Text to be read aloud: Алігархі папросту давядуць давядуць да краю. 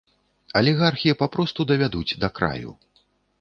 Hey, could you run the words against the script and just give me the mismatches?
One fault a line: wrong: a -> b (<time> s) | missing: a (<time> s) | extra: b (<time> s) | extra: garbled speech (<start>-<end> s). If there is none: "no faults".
missing: давядуць (2.2 s)